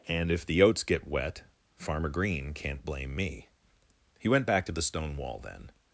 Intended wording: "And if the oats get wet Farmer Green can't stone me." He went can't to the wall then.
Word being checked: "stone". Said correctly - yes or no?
no